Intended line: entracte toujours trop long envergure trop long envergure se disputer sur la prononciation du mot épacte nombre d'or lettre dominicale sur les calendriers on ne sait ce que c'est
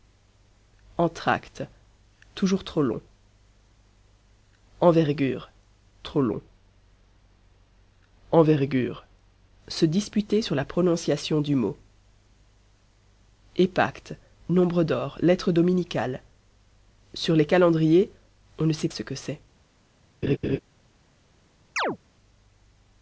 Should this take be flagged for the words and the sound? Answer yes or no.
yes